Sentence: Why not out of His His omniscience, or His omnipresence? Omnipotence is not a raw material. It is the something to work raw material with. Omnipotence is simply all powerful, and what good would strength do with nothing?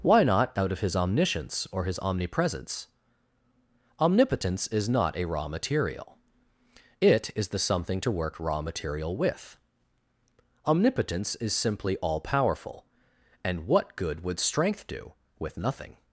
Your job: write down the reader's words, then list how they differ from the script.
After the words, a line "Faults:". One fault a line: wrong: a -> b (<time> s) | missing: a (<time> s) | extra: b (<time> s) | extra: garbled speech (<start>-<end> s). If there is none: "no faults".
Why not out of His omniscience, or His omnipresence? Omnipotence is not a raw material. It is the something to work raw material with. Omnipotence is simply all powerful, and what good would strength do with nothing?
Faults:
missing: His (0.9 s)